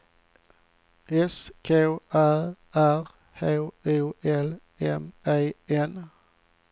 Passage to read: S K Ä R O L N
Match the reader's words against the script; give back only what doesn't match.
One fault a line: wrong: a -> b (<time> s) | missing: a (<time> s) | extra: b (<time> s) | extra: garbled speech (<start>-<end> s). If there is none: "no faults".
extra: H (3.3 s)
extra: M E (4.8 s)